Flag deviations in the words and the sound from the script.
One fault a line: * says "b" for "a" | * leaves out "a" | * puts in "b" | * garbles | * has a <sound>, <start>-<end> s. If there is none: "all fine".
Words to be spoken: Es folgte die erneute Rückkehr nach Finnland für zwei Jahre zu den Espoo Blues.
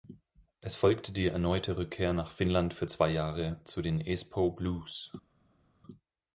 all fine